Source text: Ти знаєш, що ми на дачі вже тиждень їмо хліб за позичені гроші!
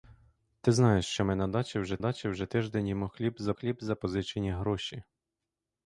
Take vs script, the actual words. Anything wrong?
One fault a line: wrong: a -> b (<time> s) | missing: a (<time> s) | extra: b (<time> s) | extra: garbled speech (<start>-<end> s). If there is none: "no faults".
extra: дачі вже (2.0 s)
extra: хліб за (3.5 s)